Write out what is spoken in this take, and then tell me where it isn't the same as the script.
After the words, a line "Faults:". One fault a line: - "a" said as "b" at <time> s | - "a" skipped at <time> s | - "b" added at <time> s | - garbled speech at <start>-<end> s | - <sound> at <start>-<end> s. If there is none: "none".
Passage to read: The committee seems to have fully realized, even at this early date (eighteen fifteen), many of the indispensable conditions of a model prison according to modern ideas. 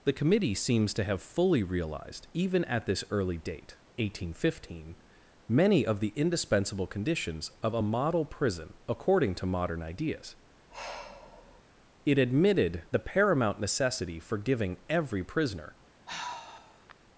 The committee seems to have fully realized, even at this early date (eighteen fifteen), many of the indispensable conditions of a model prison according to modern ideas. It admitted the paramount necessity for giving every prisoner
Faults:
- sigh at 10.7-11.6 s
- "It admitted the paramount necessity for giving every prisoner" added at 12.0 s
- sigh at 16.1-16.9 s